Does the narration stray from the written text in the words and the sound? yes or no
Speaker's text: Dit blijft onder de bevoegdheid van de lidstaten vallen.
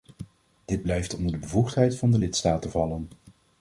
no